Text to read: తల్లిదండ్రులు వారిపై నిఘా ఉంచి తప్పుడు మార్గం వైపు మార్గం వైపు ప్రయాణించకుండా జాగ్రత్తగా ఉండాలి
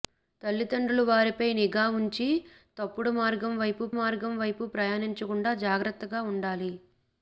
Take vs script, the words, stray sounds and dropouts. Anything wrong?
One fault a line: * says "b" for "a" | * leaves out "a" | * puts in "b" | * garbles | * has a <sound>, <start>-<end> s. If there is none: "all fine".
all fine